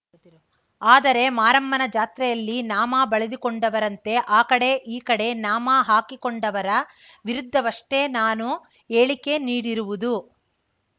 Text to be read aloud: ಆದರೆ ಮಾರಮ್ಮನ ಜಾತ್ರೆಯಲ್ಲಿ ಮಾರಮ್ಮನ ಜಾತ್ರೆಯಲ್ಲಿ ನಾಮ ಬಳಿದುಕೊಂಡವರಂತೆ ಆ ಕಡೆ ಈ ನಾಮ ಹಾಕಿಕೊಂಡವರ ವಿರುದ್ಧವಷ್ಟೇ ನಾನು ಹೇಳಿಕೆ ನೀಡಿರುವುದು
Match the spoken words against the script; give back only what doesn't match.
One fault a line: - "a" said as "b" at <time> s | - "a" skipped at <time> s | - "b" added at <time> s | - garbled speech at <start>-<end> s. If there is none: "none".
- "ಮಾರಮ್ಮನ ಜಾತ್ರೆಯಲ್ಲಿ" skipped at 2.5 s
- "ಕಡೆ" added at 5.1 s